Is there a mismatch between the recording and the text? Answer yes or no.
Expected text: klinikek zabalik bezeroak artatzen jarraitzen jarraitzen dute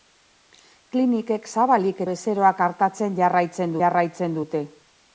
no